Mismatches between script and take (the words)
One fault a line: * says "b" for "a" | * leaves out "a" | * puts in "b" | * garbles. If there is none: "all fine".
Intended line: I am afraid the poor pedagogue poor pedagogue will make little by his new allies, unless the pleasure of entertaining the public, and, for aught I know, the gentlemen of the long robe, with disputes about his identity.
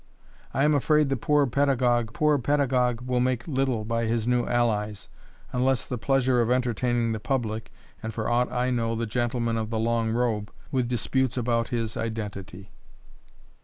all fine